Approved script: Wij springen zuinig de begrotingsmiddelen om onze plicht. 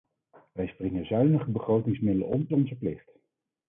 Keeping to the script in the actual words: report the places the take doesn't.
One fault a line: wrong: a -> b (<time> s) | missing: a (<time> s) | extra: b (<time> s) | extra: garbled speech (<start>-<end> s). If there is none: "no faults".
no faults